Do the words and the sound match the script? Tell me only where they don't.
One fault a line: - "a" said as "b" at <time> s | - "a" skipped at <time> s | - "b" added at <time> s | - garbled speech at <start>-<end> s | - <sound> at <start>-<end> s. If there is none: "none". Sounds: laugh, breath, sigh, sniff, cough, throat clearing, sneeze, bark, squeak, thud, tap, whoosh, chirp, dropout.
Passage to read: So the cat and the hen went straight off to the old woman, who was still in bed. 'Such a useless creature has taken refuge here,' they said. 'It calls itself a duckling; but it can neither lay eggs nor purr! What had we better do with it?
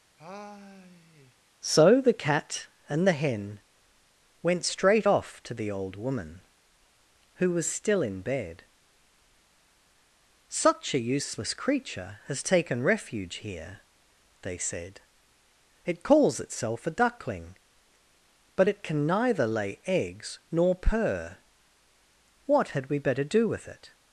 - sigh at 0.2-1.3 s